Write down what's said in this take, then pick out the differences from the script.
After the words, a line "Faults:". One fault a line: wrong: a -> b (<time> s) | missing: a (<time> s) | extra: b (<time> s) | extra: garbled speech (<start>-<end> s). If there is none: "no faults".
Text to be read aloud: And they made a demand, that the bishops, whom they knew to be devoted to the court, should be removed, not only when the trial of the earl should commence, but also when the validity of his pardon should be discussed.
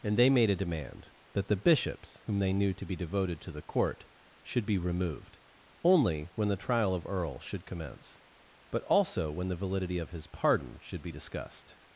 And they made a demand, that the bishops, whom they knew to be devoted to the court, should be removed, only when the trial of earl should commence, but also when the validity of his pardon should be discussed.
Faults:
missing: not (5.4 s)
missing: the (7.1 s)